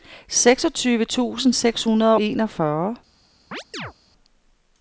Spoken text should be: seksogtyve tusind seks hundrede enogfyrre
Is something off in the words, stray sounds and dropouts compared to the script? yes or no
yes